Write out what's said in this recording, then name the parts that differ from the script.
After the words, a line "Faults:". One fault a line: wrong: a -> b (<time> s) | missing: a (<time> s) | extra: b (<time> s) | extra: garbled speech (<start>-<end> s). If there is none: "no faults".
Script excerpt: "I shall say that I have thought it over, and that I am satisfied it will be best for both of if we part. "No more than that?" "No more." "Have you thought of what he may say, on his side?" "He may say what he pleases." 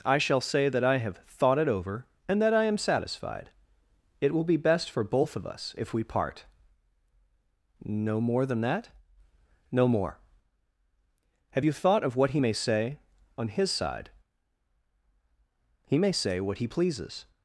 "I shall say that I have thought it over, and that I am satisfied it will be best for both of us if we part. "No more than that?" "No more." "Have you thought of what he may say, on his side?" "He may say what he pleases."
Faults:
extra: us (5.5 s)